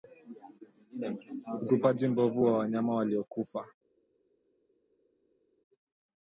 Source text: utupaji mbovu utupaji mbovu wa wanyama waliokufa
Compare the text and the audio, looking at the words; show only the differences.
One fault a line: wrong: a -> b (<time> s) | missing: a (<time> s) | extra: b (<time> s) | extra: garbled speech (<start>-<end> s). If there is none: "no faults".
missing: utupaji mbovu (2.4 s)